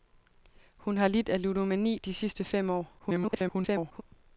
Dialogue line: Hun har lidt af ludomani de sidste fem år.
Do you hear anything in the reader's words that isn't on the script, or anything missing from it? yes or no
yes